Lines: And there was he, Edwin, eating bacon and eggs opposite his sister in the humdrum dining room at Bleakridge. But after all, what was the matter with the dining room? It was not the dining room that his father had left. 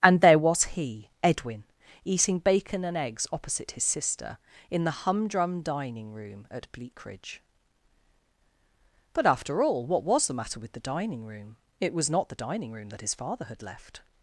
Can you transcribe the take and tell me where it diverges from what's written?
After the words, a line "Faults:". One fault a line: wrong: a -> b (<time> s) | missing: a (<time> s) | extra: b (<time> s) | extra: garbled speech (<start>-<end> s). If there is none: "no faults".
And there was he, Edwin, eating bacon and eggs opposite his sister in the humdrum dining room at Bleakridge. But after all, what was the matter with the dining room? It was not the dining room that his father had left.
Faults:
no faults